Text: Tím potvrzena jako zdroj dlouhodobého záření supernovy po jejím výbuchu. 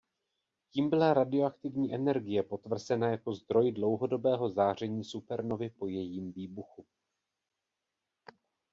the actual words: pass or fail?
fail